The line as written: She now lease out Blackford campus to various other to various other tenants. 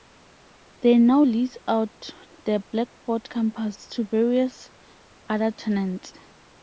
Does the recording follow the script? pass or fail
fail